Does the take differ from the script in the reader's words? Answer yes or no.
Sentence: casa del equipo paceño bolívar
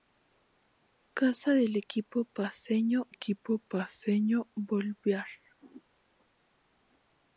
yes